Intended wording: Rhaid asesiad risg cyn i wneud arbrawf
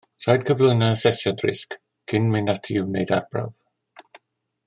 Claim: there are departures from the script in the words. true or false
true